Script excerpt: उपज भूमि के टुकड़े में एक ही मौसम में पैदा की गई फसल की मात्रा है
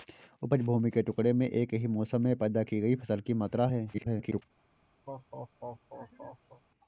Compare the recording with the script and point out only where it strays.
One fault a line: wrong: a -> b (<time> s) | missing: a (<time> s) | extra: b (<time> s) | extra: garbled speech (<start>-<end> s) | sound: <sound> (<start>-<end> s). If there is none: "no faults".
extra: garbled speech (3.9-4.4 s)
sound: laugh (5.1-6.6 s)